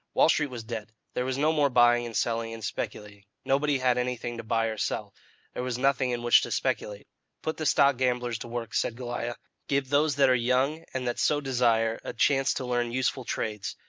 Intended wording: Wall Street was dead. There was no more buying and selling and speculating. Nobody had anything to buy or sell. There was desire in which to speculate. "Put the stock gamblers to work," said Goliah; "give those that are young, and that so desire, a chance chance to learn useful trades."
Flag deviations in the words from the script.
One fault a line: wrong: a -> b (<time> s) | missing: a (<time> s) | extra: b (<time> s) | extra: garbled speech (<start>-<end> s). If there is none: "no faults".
wrong: desire -> nothing (5.8 s)
missing: chance (12.5 s)